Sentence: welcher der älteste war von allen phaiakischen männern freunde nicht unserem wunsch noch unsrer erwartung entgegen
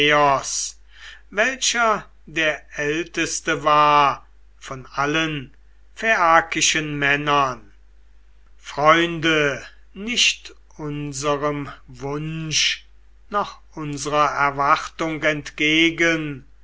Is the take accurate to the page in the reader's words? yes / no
yes